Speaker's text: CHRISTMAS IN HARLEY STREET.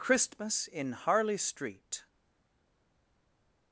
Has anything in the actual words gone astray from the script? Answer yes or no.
no